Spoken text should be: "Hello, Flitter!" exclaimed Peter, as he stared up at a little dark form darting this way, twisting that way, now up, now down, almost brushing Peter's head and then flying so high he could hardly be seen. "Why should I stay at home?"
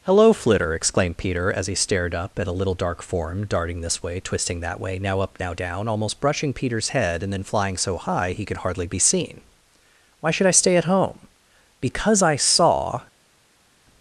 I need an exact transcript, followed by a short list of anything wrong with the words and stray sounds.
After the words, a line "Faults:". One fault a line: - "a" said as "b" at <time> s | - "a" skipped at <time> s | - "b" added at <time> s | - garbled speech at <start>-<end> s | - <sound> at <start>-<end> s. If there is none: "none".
"Hello, Flitter!" exclaimed Peter, as he stared up at a little dark form darting this way, twisting that way, now up, now down, almost brushing Peter's head and then flying so high he could hardly be seen. "Why should I stay at home?" "Because I saw
Faults:
- "Because I saw" added at 11.8 s